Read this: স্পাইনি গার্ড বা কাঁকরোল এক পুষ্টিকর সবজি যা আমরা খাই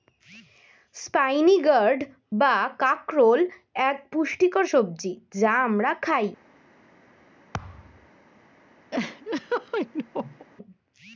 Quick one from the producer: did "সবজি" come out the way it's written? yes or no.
yes